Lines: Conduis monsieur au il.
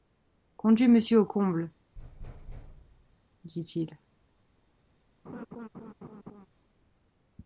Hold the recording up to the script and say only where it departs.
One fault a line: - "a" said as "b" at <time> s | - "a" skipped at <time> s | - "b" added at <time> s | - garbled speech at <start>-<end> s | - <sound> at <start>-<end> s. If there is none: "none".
- "comble dit" added at 1.2 s
- thud at 2.0-3.2 s
- laugh at 5.2-6.5 s